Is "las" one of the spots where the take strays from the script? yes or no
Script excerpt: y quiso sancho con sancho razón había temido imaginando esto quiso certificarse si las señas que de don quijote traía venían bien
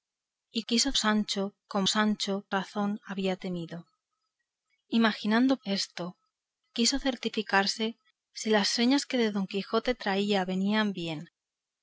no